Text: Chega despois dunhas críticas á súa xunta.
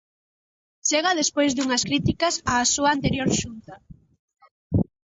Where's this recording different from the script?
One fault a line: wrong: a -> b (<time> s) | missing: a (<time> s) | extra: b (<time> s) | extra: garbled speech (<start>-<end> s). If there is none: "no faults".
extra: anterior (3.0 s)